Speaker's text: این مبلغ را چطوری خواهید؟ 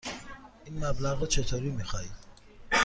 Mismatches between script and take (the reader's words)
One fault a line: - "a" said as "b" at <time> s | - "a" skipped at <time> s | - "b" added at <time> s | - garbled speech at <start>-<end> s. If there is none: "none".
- "می" added at 1.7 s